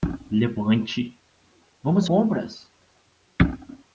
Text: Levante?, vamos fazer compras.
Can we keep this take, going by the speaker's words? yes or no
no